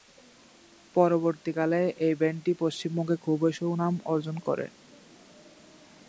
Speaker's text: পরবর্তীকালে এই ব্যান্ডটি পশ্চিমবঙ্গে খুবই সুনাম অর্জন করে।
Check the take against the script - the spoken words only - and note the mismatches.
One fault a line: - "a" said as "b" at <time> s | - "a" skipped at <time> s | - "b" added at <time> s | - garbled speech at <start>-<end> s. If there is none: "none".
none